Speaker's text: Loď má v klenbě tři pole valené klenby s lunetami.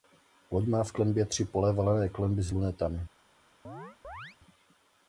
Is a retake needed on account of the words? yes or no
no